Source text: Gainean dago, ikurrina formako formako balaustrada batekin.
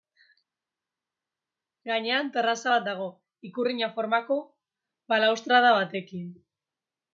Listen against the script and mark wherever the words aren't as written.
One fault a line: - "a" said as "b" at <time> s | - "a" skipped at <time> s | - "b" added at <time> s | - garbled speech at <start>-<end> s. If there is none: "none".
- "terraza bat" added at 2.3 s
- "formako" skipped at 4.4 s